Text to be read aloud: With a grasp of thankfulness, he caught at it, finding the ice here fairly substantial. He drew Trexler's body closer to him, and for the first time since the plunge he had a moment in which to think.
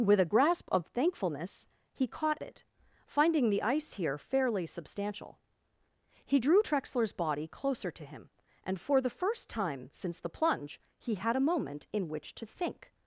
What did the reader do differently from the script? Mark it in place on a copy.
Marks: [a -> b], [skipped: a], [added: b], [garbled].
With a grasp of thankfulness, he caught [skipped: at] it, finding the ice here fairly substantial. He drew Trexler's body closer to him, and for the first time since the plunge he had a moment in which to think.